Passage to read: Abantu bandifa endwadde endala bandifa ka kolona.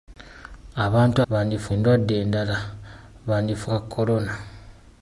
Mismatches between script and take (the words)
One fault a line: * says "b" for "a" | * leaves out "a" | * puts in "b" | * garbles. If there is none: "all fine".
all fine